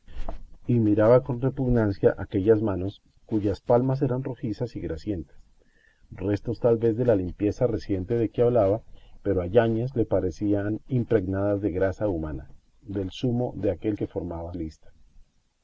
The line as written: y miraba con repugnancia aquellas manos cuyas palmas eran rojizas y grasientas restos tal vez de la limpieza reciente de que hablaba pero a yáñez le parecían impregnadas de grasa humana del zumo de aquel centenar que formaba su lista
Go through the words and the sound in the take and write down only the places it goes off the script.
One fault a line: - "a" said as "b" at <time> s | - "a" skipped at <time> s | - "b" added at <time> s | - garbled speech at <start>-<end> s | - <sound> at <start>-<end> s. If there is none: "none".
- "centenar" skipped at 14.0 s
- "su" skipped at 14.5 s